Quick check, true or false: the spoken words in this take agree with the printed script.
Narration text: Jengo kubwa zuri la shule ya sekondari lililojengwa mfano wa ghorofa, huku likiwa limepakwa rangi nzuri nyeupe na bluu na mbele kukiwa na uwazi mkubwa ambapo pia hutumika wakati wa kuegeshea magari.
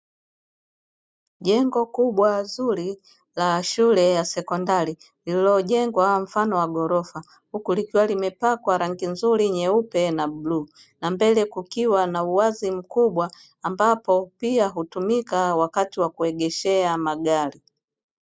true